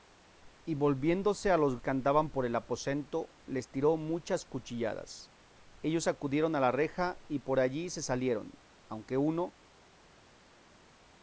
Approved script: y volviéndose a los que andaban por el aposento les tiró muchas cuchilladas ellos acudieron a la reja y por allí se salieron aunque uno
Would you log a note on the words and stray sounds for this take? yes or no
no